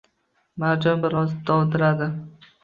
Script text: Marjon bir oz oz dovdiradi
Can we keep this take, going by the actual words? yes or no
no